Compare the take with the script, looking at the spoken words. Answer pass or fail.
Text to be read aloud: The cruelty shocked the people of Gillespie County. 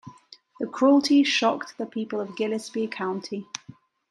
pass